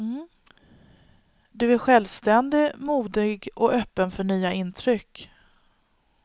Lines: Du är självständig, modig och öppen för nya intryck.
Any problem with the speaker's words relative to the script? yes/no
no